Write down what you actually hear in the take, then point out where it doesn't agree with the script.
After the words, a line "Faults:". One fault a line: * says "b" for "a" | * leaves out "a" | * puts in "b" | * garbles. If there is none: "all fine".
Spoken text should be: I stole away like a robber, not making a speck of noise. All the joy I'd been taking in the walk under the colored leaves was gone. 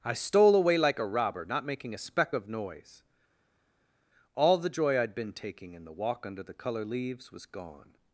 I stole away like a robber, not making a speck of noise. All the joy I'd been taking in the walk under the color leaves was gone.
Faults:
* says "color" for "colored"